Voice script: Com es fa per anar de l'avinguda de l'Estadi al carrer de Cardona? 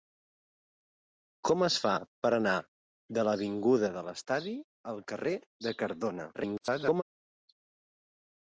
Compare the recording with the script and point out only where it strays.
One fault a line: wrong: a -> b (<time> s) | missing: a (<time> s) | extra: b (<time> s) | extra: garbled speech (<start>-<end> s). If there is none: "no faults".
extra: garbled speech (6.3-7.0 s)